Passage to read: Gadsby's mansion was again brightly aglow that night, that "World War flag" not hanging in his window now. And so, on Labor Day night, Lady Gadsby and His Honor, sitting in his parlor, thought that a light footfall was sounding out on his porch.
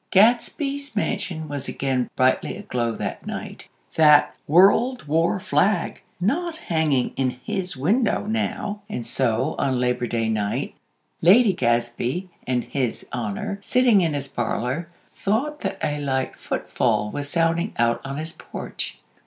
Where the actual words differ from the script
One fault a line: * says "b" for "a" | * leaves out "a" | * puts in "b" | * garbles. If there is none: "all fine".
all fine